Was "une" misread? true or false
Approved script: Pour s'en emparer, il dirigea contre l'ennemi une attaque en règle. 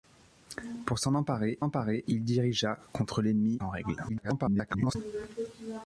true